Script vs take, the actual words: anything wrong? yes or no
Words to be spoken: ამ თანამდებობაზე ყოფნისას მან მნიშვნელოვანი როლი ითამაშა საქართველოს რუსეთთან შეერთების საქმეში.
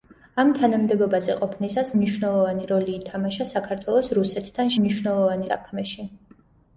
yes